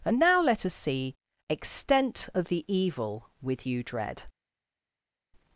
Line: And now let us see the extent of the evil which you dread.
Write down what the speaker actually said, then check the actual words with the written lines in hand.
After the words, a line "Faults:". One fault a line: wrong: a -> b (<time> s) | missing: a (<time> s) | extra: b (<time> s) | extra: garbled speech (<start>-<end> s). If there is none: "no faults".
And now let us see extent of the evil with you dread.
Faults:
missing: the (1.1 s)
wrong: which -> with (3.4 s)